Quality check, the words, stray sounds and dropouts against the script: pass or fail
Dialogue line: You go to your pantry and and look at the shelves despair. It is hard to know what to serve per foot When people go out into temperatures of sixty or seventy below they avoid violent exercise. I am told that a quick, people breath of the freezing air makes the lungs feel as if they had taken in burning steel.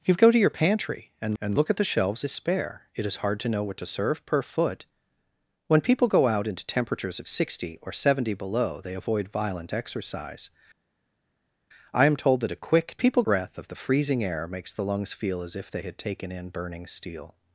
pass